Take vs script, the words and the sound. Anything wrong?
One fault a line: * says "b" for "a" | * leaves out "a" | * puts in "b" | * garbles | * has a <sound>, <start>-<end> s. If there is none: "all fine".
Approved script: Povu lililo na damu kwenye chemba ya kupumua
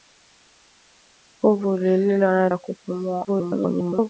* leaves out "damu kwenye chemba"
* garbles